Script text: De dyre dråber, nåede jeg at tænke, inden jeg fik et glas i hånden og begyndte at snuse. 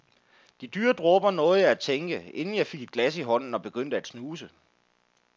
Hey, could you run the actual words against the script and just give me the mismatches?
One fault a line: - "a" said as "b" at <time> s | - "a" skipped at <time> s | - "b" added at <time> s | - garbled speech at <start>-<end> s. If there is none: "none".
none